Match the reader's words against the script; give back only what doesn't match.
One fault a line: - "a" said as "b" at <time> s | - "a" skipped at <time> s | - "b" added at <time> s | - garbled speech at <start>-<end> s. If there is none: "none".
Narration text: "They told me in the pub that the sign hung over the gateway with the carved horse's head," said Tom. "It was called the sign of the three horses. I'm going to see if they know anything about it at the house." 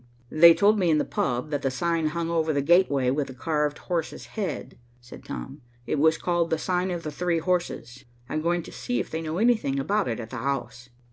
none